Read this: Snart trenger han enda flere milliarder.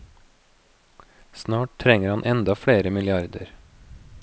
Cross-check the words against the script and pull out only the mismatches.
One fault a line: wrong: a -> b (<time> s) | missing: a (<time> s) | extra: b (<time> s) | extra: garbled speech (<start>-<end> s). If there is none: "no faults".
no faults